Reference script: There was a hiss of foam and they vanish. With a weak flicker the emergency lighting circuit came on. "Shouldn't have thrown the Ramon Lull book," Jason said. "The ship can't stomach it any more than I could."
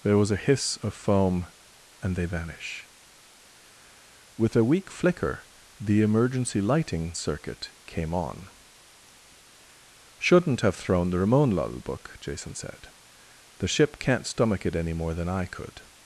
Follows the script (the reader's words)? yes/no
yes